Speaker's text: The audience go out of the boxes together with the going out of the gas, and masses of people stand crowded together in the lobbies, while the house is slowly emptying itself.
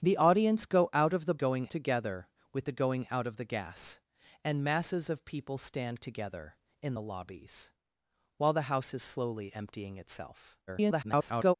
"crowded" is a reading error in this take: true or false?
true